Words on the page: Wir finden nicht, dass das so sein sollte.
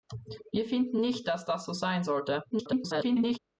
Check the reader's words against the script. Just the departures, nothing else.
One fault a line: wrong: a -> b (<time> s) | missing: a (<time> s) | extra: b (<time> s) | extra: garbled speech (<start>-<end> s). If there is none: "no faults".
extra: garbled speech (2.5-3.4 s)